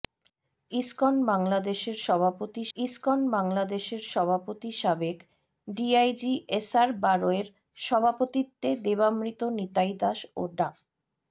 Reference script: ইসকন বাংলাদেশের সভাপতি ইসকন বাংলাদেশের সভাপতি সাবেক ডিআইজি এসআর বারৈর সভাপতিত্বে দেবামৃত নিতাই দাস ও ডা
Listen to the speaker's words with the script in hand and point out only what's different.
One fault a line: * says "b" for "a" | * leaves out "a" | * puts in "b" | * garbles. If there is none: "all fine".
all fine